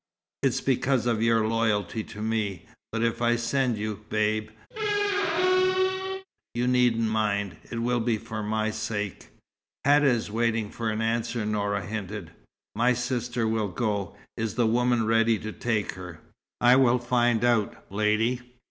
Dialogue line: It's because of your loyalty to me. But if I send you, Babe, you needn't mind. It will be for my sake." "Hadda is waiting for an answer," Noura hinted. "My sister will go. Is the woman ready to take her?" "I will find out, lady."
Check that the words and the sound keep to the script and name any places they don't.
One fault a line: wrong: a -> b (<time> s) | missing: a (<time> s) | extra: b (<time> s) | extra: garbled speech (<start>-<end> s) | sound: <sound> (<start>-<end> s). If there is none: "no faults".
sound: squeak (4.7-6.3 s)